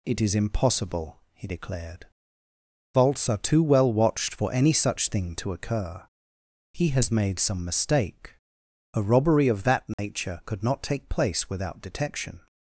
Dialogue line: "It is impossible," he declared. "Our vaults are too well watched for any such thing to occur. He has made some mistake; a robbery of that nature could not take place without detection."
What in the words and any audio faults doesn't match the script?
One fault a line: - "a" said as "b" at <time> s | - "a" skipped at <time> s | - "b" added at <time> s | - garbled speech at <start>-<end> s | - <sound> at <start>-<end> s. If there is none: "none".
- "Our" skipped at 2.1 s
- dropout at 9.9-10.0 s